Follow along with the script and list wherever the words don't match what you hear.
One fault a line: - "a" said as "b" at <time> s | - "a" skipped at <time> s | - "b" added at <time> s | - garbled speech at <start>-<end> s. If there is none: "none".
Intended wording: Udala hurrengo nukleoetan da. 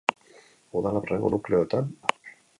none